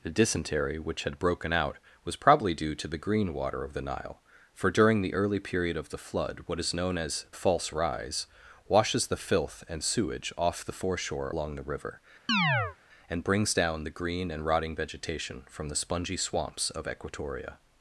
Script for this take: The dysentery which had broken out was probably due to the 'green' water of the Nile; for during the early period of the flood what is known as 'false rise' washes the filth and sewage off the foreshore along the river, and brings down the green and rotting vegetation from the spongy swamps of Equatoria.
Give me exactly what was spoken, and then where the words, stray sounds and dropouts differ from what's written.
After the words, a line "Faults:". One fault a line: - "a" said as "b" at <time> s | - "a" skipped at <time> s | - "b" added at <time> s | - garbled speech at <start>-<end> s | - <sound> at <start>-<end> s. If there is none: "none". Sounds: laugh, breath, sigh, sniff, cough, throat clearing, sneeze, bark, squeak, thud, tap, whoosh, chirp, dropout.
The dysentery which had broken out was probably due to the 'green' water of the Nile; for during the early period of the flood what is known as 'false rise' washes the filth and sewage off the foreshore along the river, and brings down the green and rotting vegetation from the spongy swamps of Equatoria.
Faults:
- chirp at 12.3-12.8 s